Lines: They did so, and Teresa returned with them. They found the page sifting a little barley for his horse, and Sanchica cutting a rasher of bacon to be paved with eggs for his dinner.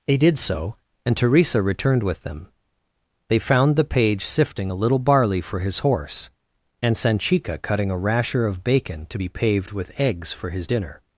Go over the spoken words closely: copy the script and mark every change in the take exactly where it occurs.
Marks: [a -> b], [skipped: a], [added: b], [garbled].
They did so, and Teresa returned with them. They found the page sifting a little barley for his horse, and Sanchica cutting a rasher of bacon to be paved with eggs for his dinner.